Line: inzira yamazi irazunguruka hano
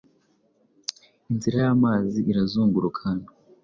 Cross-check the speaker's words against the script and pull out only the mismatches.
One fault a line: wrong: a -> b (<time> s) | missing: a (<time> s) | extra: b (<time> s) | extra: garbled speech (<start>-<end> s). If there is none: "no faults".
no faults